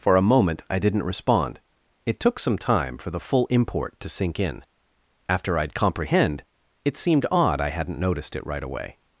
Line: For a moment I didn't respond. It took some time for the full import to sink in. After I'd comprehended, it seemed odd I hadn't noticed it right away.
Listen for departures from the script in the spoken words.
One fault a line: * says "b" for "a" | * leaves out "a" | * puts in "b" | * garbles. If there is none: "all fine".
* says "comprehend" for "comprehended"